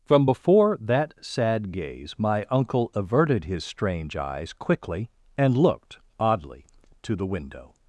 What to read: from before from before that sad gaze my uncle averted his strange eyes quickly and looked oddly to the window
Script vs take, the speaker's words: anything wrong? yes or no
yes